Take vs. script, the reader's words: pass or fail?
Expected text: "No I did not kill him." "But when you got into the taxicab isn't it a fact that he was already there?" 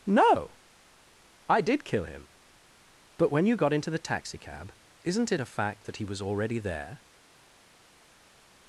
fail